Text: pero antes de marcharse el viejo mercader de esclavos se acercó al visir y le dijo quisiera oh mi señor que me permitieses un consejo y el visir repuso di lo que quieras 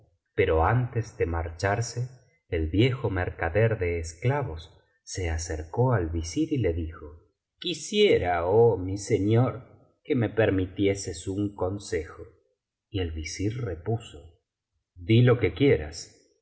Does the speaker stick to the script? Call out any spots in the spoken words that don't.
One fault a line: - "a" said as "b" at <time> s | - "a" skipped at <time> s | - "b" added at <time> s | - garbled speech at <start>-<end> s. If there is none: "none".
none